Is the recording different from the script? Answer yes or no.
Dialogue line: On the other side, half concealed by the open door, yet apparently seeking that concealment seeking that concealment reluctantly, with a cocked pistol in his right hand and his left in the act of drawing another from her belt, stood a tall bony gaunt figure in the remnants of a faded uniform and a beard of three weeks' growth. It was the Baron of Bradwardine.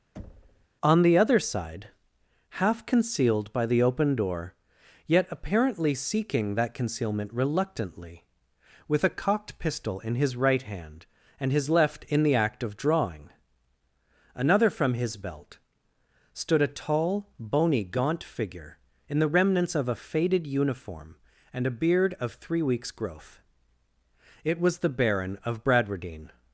yes